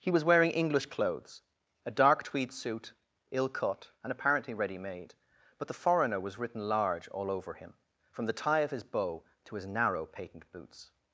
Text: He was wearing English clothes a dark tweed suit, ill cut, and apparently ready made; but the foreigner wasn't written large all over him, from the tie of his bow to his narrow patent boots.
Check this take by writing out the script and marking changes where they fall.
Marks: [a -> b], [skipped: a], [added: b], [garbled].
He was wearing English clothes a dark tweed suit, ill cut, and apparently ready made; but the foreigner [wasn't -> was] written large all over him, from the tie of his bow to his narrow patent boots.